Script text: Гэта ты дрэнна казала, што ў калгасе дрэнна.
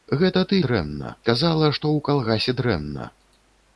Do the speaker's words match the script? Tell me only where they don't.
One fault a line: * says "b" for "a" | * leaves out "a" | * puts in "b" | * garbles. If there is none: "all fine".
all fine